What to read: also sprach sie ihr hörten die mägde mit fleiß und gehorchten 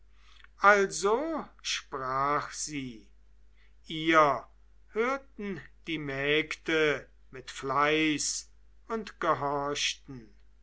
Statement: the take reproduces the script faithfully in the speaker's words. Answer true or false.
true